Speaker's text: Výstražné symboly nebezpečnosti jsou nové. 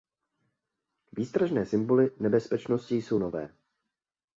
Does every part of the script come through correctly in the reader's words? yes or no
yes